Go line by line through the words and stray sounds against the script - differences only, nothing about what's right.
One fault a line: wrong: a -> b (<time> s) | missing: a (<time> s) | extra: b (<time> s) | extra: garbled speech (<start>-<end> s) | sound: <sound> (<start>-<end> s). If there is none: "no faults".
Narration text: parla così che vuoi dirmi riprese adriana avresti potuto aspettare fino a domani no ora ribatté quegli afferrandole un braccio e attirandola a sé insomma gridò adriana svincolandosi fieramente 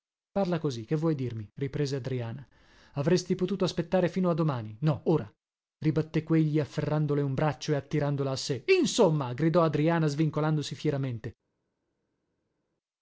no faults